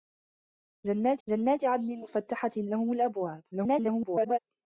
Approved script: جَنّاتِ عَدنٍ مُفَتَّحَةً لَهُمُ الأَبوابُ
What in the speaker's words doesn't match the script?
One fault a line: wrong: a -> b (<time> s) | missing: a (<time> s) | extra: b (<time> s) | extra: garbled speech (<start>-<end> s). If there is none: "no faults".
extra: جَنّاتِ (1.3 s)
extra: garbled speech (3.5-4.4 s)